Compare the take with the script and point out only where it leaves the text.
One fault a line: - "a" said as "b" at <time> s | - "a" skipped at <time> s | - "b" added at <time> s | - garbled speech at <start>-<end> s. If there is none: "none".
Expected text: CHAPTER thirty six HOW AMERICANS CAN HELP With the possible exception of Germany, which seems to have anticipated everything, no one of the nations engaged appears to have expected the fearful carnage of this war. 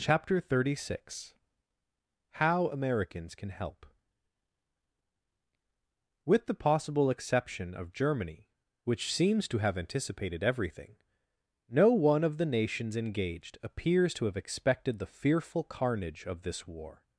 none